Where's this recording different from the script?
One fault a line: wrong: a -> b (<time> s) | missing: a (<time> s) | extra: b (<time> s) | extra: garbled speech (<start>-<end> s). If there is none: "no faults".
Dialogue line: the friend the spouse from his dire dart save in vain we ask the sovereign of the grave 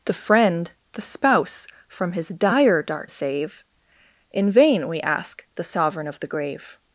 no faults